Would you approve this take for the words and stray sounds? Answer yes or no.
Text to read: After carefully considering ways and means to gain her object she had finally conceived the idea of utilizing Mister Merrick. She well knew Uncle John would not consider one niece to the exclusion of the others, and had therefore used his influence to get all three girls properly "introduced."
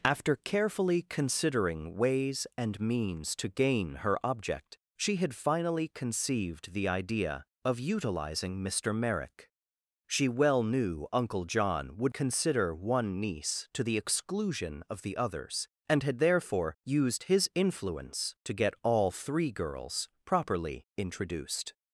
no